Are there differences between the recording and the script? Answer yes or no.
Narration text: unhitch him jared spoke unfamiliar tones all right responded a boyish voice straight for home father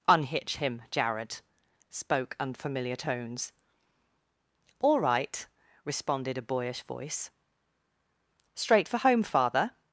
no